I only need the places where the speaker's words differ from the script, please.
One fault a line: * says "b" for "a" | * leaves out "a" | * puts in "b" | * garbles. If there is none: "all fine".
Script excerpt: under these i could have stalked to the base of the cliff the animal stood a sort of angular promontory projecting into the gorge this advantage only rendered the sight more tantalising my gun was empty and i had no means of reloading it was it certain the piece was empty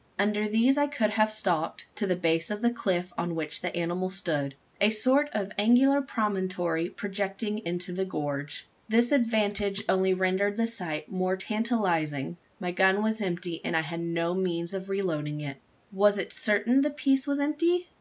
* puts in "on which"